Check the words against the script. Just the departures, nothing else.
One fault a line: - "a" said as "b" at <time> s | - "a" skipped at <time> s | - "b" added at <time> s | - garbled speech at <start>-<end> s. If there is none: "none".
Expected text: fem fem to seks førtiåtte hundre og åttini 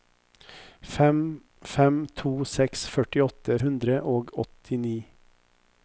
none